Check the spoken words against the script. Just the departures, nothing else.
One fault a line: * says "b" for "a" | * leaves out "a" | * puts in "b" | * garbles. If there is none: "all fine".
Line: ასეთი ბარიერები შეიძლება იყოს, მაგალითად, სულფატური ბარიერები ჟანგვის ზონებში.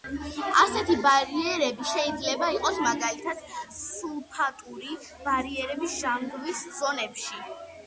all fine